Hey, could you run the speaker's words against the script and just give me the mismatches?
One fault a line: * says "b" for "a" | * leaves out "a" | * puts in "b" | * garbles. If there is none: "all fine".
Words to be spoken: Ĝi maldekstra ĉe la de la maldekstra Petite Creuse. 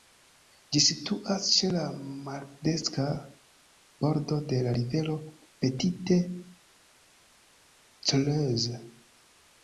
* says "situas" for "maldekstra"
* puts in "maldekstra bordo"
* says "rivero" for "maldekstra"